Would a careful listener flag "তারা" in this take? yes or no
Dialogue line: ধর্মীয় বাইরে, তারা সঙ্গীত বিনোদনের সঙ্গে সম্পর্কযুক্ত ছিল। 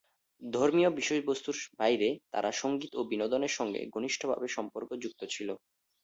no